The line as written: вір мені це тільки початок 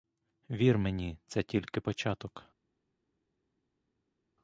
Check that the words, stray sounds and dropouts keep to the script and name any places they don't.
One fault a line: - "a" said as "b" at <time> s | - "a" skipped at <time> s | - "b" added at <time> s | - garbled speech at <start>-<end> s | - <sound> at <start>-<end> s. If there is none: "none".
none